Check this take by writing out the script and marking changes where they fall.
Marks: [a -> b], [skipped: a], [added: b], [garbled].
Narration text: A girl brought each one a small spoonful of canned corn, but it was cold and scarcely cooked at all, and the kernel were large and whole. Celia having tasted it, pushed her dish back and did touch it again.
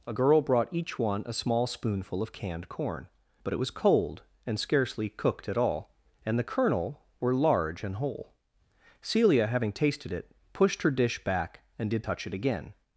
A girl brought each one a small spoonful of canned corn, but it was cold and scarcely cooked at all, and the kernel were large and whole. Celia having tasted it, pushed her dish back and did touch it again.